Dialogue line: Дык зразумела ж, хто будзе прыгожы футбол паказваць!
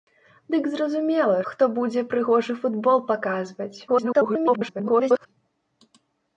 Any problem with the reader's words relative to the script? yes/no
yes